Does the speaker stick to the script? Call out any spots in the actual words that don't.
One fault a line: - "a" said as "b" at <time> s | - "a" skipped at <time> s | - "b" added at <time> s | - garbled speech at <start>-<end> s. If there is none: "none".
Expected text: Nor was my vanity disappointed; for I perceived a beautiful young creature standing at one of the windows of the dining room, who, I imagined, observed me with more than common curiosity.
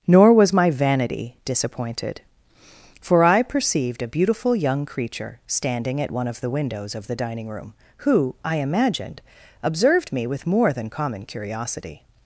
none